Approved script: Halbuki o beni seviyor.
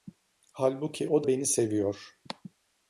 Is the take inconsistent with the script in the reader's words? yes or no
no